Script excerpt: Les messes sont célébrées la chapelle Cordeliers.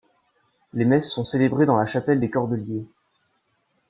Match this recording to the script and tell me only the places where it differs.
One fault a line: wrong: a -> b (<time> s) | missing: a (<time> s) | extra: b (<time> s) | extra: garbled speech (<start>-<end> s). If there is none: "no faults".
extra: dans (1.6 s)
extra: des (2.2 s)